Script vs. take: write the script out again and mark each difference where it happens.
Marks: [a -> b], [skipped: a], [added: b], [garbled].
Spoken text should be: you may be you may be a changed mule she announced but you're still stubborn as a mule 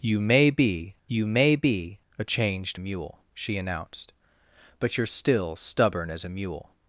you may be you may be a changed mule she announced but you're still stubborn as a mule